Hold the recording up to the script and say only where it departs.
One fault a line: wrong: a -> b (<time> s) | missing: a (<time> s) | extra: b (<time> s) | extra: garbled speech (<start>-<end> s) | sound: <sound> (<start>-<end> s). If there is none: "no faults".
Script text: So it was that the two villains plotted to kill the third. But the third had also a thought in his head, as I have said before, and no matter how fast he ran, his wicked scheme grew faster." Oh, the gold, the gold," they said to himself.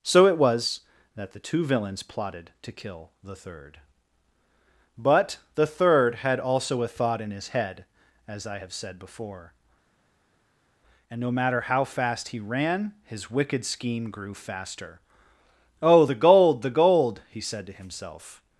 wrong: they -> he (17.3 s)